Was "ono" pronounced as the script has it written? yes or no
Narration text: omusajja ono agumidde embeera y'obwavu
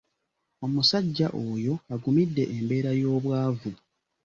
no